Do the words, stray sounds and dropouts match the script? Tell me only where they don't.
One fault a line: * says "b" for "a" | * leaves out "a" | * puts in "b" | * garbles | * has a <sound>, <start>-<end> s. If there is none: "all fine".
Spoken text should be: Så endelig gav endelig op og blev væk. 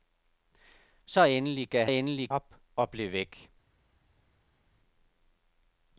all fine